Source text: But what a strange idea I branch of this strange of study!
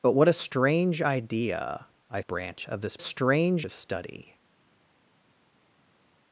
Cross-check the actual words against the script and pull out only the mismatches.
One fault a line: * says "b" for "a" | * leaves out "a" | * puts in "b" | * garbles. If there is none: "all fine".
all fine